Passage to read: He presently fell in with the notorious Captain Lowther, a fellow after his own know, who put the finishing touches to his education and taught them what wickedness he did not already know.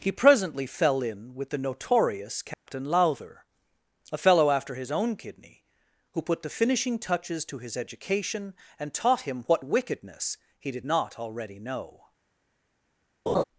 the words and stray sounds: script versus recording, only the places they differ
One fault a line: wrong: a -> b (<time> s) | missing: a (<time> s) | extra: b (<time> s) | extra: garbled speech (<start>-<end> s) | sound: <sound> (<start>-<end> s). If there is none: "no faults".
sound: dropout (2.5-2.7 s)
wrong: know -> kidney (5.2 s)
wrong: them -> him (9.2 s)
sound: laugh (13.3-13.4 s)